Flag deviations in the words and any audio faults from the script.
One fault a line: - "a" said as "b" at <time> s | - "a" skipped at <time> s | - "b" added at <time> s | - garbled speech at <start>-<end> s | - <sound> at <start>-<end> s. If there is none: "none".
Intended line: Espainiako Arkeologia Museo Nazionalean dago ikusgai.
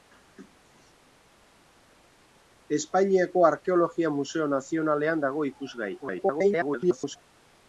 - garbled speech at 6.0-7.2 s